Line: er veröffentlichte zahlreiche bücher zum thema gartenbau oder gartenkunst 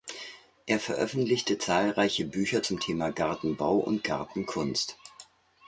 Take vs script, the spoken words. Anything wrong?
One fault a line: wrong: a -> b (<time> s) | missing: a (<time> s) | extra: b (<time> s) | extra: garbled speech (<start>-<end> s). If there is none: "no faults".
wrong: oder -> und (3.8 s)